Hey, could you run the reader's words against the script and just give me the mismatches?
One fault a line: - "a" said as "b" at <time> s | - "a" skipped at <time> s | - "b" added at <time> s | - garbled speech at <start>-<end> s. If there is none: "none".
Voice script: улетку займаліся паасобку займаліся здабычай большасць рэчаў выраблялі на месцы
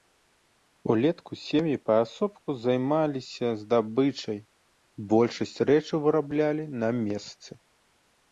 - "займаліся" said as "сем'і" at 1.5 s